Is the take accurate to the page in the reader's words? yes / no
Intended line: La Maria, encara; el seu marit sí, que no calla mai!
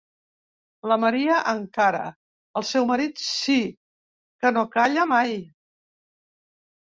yes